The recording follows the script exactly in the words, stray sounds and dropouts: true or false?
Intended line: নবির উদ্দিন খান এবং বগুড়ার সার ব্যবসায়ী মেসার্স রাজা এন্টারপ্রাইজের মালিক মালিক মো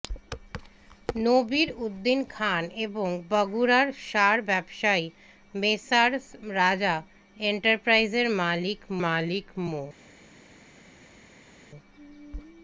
true